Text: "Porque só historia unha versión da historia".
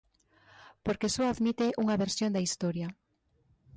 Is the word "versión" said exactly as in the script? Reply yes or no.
yes